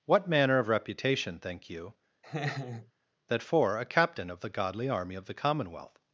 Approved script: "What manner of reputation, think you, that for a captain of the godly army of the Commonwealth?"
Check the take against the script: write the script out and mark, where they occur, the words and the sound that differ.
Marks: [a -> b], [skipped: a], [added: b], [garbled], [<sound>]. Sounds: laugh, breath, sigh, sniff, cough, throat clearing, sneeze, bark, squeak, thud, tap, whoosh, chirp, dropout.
"What manner of reputation, think you, [laugh] that for a captain of the godly army of the Commonwealth?"